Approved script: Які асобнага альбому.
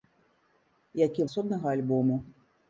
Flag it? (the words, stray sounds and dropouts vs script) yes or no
no